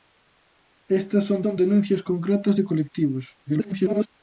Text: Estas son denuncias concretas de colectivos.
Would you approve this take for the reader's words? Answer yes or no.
no